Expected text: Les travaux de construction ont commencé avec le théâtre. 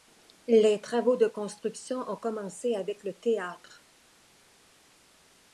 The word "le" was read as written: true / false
true